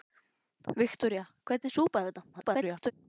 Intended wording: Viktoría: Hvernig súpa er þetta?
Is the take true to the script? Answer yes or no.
no